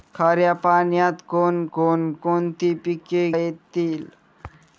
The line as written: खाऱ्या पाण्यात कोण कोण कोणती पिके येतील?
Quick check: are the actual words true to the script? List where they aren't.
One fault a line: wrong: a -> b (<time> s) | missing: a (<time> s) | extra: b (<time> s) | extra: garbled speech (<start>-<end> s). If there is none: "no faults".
no faults